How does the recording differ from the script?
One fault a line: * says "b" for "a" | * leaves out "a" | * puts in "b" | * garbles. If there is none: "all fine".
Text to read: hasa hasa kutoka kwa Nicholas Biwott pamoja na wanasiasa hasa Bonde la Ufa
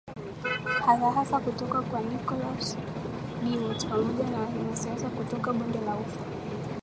* says "kutoka" for "hasa"